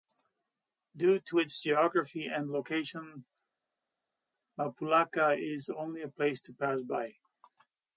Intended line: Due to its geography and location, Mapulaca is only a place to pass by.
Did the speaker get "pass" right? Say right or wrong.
right